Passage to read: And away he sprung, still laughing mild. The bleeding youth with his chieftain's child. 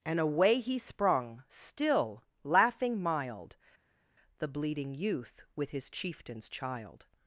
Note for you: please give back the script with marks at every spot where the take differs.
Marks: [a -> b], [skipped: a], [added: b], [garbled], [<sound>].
And away he sprung, still laughing mild. The bleeding youth with his chieftain's child.